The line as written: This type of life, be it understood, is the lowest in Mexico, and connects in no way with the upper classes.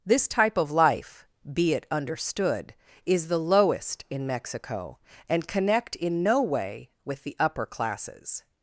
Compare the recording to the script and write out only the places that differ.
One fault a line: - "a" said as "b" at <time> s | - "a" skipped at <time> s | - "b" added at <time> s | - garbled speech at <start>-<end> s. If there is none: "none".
- "connects" said as "connect" at 5.5 s